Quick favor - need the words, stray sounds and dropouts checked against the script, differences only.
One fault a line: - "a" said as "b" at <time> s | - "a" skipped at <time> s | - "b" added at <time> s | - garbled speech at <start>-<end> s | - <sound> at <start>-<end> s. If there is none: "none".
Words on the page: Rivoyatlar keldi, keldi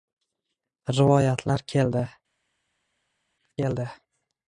none